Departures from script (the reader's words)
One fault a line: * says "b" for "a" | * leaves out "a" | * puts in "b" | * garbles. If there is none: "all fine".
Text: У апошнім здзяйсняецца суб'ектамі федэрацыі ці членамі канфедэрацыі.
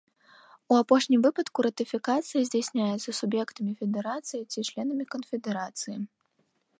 * puts in "выпадку ратыфікацыя"